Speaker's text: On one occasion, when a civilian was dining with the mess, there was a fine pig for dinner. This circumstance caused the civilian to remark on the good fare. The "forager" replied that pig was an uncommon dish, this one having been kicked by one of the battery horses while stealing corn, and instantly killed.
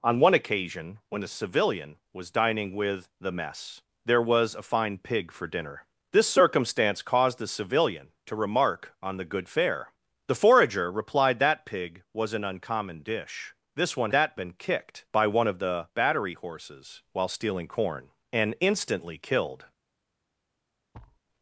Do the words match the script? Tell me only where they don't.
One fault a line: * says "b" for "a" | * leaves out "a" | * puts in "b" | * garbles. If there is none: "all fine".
* says "that" for "having"